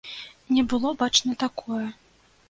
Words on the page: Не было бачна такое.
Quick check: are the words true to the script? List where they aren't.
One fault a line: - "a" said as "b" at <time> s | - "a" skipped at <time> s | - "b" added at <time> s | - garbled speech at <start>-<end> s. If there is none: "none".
none